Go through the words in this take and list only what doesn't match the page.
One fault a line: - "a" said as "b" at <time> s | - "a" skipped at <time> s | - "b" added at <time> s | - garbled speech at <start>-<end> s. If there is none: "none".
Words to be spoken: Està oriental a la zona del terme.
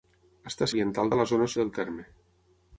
none